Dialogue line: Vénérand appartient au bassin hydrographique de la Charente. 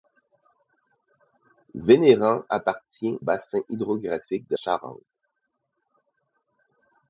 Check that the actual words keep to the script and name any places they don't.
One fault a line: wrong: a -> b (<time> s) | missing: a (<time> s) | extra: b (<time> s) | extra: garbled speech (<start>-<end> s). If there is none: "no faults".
missing: au (3.2 s)
missing: la (4.6 s)